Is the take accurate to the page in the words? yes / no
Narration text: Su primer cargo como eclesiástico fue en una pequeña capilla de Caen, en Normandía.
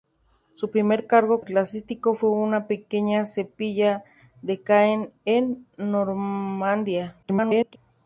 no